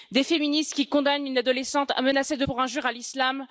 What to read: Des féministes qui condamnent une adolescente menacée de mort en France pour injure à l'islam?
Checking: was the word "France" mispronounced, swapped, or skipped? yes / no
yes